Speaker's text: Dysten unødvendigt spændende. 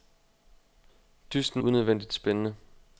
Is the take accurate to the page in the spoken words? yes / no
yes